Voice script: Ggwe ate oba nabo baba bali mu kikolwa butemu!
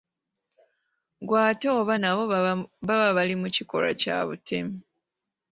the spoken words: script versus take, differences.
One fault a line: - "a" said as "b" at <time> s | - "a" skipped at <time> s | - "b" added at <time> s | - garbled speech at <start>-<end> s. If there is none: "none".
- "kya" added at 4.0 s